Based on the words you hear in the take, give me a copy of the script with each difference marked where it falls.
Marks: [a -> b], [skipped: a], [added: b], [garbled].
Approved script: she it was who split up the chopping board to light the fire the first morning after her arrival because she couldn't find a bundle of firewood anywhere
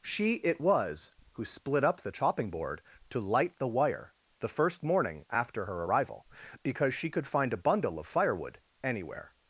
she it was who split up the chopping board to light the [fire -> wire] the first morning after her arrival because she [couldn't -> could] find a bundle of firewood anywhere